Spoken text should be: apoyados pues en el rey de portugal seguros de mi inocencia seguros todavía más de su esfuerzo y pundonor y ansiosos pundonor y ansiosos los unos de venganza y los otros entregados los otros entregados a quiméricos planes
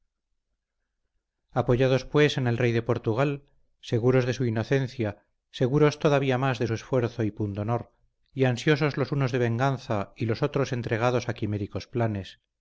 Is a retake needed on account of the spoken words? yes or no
yes